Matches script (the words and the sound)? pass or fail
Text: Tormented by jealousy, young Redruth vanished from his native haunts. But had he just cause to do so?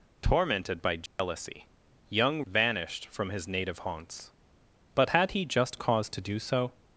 fail